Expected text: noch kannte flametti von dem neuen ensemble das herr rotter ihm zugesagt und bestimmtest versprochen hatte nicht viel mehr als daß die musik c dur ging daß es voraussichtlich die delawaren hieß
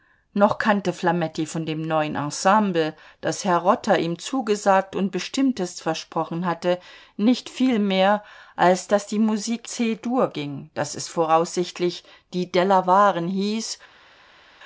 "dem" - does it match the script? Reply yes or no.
yes